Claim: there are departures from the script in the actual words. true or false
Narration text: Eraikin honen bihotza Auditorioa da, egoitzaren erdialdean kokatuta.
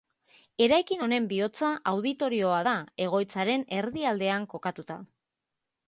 false